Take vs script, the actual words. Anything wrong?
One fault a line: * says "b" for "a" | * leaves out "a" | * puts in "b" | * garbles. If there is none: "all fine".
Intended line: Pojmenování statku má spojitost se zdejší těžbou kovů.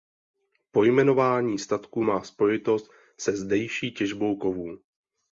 all fine